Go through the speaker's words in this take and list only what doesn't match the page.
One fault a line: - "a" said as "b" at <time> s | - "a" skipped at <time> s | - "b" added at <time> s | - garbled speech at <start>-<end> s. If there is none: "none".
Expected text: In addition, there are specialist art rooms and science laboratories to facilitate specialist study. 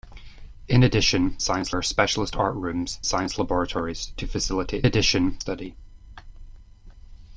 - "there" said as "science" at 1.4 s
- "and" skipped at 3.0 s
- "specialist" said as "addition" at 4.8 s